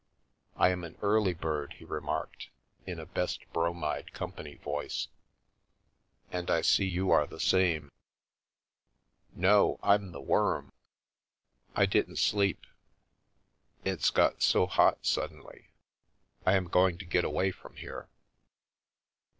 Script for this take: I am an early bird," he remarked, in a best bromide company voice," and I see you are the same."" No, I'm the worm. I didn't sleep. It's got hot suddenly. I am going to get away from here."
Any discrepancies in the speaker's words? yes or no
yes